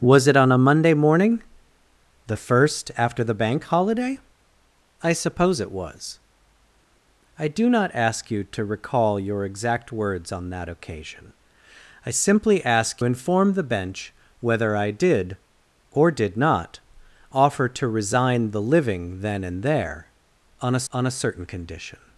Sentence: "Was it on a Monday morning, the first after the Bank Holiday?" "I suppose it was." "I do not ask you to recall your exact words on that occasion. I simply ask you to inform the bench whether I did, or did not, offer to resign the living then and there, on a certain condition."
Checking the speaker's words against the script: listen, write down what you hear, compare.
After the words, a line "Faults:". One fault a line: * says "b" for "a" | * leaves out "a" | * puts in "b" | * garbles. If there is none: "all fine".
"Was it on a Monday morning, the first after the Bank Holiday?" "I suppose it was." "I do not ask you to recall your exact words on that occasion. I simply ask inform the bench whether I did, or did not, offer to resign the living then and there, on a on a certain condition."
Faults:
* leaves out "you to"
* puts in "on a"